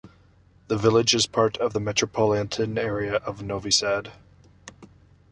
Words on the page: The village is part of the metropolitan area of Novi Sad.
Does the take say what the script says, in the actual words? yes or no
yes